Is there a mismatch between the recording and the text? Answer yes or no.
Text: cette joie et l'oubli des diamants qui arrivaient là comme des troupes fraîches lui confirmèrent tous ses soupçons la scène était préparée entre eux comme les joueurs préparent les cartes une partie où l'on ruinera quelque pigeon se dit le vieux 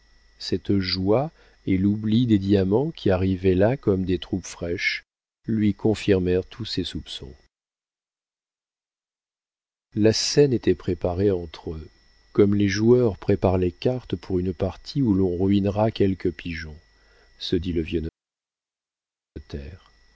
yes